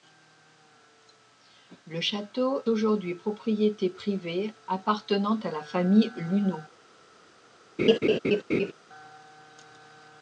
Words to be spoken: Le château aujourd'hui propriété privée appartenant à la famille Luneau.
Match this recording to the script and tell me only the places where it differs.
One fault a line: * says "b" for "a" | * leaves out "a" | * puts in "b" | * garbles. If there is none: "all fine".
all fine